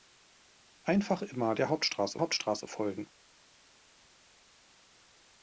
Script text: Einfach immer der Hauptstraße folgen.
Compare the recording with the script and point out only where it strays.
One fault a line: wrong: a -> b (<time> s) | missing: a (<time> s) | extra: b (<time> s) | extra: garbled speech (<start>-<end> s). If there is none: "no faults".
extra: Hauptstraße (2.2 s)